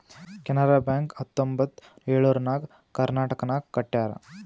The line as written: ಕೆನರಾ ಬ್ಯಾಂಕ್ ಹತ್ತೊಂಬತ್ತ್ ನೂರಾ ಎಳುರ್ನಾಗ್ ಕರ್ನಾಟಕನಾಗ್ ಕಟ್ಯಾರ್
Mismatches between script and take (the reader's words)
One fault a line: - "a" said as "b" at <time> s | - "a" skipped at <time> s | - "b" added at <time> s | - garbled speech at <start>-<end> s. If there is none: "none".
- "ನೂರಾ" skipped at 1.8 s